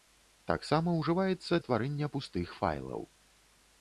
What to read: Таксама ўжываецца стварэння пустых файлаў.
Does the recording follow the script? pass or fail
pass